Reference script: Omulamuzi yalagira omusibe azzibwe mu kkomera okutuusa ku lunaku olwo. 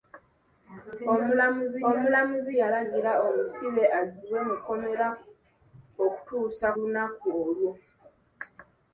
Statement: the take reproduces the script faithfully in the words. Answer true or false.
false